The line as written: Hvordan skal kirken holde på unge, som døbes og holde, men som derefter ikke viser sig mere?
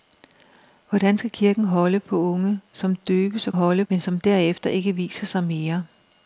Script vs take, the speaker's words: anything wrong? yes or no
no